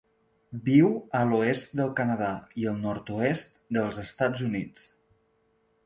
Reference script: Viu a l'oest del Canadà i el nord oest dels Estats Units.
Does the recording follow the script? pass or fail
pass